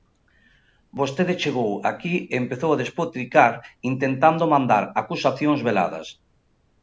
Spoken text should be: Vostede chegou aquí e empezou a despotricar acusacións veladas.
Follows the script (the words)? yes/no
no